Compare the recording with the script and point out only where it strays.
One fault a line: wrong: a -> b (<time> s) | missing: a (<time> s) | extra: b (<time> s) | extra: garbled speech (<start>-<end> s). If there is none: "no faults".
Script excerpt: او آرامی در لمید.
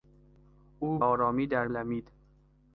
no faults